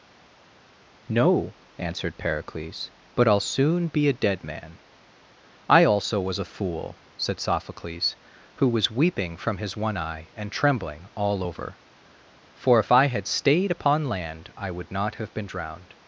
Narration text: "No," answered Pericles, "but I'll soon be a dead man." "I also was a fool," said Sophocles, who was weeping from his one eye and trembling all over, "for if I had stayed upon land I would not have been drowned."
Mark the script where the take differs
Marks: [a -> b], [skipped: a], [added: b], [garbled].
"No," answered Pericles, "but I'll soon be a dead man." "I also was a fool," said Sophocles, who was weeping from his one eye and trembling all over, "for if I had stayed upon land I would not have been drowned."